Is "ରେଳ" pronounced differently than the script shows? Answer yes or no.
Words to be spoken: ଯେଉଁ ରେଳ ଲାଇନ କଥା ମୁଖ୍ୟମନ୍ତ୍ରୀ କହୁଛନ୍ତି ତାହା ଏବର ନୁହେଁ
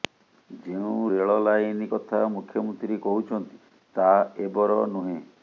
no